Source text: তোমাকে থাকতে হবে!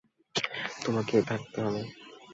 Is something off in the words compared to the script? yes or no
no